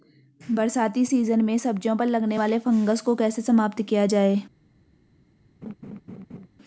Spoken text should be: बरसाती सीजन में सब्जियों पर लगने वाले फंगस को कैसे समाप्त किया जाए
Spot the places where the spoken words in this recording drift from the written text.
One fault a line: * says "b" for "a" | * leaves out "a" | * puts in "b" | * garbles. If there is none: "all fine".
all fine